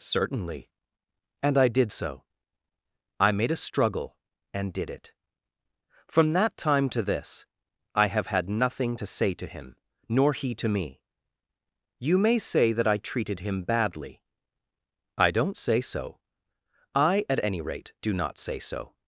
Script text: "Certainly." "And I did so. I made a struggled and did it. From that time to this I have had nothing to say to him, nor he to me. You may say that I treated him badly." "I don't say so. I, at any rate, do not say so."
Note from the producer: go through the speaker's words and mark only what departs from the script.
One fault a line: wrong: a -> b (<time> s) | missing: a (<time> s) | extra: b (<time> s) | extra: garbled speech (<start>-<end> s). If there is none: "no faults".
wrong: struggled -> struggle (3.7 s)